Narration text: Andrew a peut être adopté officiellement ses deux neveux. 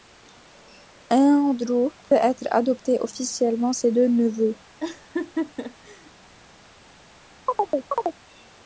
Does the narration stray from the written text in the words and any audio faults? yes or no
yes